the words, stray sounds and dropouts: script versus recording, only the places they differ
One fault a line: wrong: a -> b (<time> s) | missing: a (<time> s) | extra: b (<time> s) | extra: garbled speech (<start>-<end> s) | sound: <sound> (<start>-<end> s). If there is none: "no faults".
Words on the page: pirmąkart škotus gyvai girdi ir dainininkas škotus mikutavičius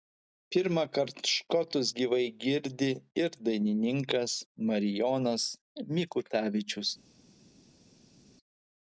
wrong: škotus -> marijonas (4.7 s)